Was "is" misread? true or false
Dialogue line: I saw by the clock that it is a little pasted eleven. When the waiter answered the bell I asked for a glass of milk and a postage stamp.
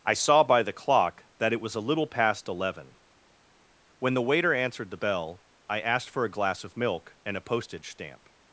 true